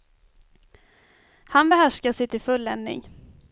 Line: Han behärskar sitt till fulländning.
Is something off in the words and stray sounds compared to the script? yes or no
no